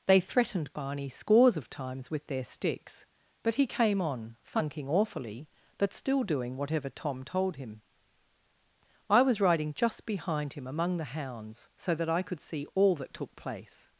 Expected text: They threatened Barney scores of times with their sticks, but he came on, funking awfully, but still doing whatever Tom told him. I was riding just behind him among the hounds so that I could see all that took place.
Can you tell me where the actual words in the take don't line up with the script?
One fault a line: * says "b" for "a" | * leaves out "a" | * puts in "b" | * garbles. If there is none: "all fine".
all fine